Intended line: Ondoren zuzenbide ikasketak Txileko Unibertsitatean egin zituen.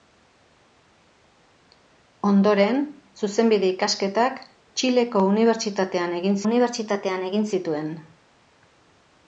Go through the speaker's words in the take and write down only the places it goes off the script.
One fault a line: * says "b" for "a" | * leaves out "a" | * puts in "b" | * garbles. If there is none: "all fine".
* puts in "Unibertsitatean egin"